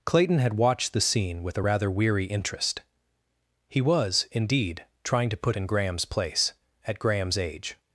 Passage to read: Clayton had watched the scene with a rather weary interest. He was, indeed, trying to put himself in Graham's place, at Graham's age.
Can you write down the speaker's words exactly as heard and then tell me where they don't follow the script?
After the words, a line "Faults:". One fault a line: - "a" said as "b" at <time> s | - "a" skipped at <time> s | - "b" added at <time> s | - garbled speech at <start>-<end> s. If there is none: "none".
Clayton had watched the scene with a rather weary interest. He was, indeed, trying to put in Graham's place, at Graham's age.
Faults:
- "himself" skipped at 5.6 s